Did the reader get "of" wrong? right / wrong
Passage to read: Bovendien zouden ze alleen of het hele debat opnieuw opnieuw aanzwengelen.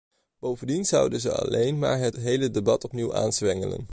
wrong